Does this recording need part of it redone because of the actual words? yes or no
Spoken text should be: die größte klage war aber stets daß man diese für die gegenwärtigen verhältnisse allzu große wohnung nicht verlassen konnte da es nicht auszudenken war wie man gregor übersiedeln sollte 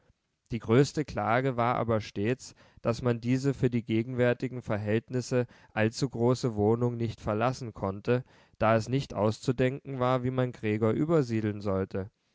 no